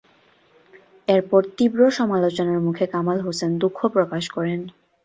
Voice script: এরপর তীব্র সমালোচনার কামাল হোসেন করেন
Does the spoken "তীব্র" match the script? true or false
true